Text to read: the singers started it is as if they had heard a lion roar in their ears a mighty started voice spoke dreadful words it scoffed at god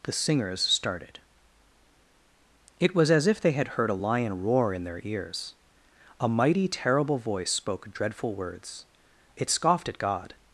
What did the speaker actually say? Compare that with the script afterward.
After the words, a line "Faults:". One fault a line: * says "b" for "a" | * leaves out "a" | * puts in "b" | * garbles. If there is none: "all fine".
the singers started it was as if they had heard a lion roar in their ears a mighty terrible voice spoke dreadful words it scoffed at god
Faults:
* says "was" for "is"
* says "terrible" for "started"